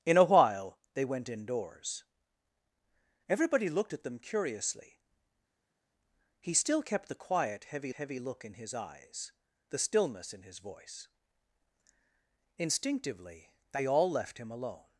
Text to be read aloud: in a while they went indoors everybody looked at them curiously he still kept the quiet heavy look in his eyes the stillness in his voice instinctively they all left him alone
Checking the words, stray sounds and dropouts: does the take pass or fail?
fail